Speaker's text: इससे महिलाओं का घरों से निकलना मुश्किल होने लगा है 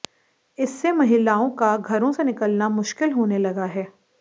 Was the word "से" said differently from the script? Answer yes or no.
no